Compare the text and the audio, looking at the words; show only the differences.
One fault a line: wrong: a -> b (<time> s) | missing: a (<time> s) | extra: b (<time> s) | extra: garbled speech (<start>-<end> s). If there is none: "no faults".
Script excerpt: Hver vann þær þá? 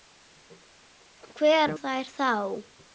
missing: vann (1.8 s)